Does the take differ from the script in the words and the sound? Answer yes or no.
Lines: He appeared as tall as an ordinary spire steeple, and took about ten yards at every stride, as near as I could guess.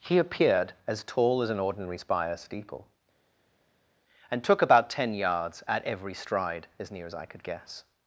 no